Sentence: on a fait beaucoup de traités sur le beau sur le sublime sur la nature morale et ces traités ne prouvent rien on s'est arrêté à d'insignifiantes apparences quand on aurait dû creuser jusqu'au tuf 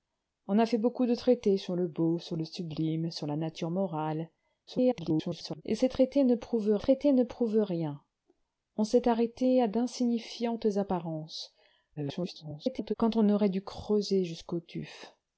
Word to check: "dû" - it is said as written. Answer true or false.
true